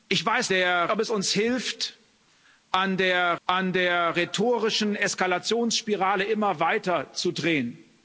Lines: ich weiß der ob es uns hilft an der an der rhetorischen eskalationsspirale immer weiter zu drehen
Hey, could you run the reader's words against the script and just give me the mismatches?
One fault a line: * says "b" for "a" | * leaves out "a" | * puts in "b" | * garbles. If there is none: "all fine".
all fine